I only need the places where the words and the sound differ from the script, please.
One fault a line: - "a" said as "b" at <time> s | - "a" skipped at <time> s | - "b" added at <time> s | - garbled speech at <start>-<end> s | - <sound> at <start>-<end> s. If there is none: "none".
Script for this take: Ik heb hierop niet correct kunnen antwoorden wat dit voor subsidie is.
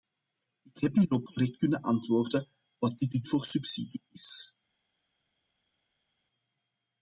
- "niet" skipped at 1.3 s
- "dit" added at 3.1 s